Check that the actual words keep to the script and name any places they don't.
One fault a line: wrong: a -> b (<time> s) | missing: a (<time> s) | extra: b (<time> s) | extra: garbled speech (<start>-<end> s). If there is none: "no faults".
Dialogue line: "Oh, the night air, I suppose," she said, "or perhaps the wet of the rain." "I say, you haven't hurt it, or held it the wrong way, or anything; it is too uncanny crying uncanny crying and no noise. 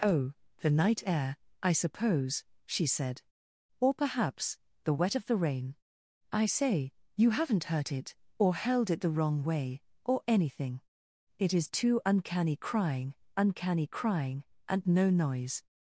no faults